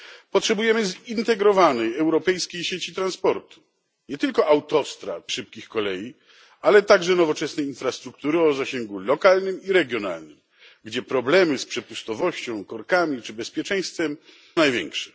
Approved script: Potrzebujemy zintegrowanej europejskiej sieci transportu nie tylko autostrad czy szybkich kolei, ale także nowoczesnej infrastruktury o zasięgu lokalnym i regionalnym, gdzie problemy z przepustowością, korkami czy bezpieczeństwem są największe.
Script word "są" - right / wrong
wrong